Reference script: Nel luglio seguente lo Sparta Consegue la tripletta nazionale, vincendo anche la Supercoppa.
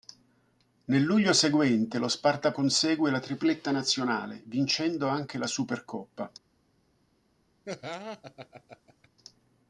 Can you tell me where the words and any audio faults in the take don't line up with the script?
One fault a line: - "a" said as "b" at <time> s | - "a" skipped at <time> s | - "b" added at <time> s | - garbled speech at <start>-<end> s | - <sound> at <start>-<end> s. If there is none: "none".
- laugh at 7.6-9.1 s